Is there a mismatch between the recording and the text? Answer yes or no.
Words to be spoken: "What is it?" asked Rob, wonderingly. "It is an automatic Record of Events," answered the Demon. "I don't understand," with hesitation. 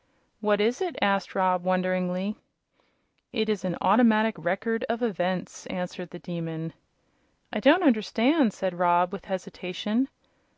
yes